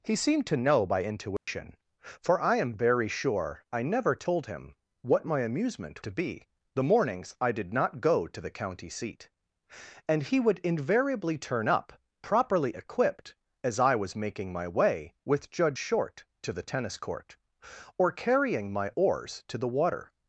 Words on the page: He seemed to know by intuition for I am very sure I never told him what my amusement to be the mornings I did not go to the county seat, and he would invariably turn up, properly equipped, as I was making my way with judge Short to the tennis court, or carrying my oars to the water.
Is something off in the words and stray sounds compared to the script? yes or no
yes